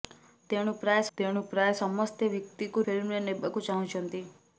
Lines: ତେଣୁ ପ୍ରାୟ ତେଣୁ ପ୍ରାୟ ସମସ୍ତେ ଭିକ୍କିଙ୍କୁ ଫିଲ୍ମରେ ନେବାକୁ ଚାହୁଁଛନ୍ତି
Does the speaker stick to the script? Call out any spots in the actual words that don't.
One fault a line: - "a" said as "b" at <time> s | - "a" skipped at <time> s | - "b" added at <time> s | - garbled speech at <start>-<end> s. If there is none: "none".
none